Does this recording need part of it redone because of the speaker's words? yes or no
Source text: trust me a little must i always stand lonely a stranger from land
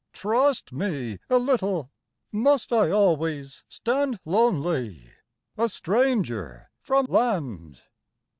no